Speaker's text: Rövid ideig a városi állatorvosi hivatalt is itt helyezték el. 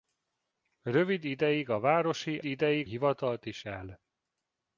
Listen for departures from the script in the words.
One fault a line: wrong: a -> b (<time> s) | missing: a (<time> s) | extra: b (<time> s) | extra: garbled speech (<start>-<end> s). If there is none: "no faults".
wrong: állatorvosi -> ideig (2.4 s)
missing: itt helyezték (3.6 s)